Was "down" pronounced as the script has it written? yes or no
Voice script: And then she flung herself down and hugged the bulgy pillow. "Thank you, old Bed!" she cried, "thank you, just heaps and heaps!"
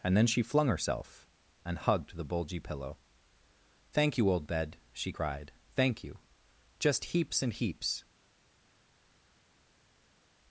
no